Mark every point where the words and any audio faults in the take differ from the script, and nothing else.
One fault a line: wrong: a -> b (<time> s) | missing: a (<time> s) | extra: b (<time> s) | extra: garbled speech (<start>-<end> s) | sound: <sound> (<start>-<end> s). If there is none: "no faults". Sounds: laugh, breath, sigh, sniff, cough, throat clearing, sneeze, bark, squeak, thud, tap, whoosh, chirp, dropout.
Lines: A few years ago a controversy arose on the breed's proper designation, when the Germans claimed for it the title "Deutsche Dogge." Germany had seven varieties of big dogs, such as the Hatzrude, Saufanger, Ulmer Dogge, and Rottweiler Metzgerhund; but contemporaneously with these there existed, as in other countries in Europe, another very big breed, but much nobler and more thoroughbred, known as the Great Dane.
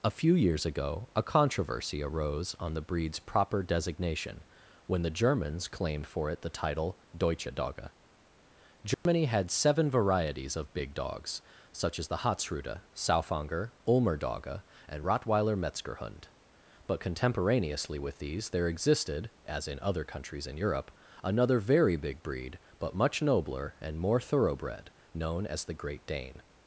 sound: dropout (8.9-9.1 s)